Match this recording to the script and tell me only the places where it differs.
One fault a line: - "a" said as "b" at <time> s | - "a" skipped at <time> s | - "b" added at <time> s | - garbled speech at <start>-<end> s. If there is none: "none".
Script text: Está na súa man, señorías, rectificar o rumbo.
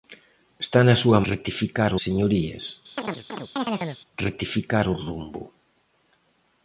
- "man" said as "rectificar" at 1.3 s